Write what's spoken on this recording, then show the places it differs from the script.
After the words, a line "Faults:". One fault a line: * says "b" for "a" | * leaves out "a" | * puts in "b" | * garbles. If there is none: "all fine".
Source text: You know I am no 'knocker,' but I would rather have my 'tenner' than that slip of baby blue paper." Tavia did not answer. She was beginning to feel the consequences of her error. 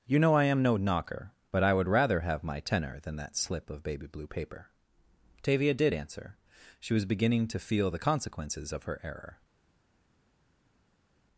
You know I am no 'knocker,' but I would rather have my 'tenner' than that slip of baby blue paper." Tavia did answer. She was beginning to feel the consequences of her error.
Faults:
* leaves out "not"